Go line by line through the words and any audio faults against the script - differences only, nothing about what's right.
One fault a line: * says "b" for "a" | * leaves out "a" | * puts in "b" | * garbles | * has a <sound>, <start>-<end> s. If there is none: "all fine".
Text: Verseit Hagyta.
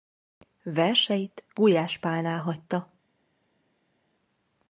* puts in "Gulyás Pálnál"